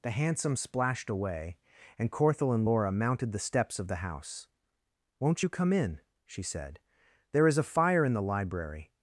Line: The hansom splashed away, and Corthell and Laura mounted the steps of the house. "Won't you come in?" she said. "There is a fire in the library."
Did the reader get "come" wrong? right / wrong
right